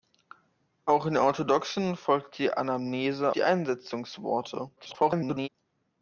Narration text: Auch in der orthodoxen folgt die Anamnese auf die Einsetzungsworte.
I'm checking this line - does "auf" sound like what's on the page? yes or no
no